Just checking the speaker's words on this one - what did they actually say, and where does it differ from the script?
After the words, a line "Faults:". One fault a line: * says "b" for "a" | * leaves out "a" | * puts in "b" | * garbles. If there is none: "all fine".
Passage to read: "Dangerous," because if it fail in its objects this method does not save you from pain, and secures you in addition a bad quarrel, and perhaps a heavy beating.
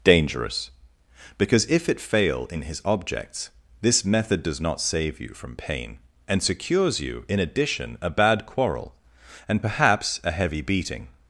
"Dangerous," because if it fail in his objects this method does not save you from pain, and secures you in addition a bad quarrel, and perhaps a heavy beating.
Faults:
* says "his" for "its"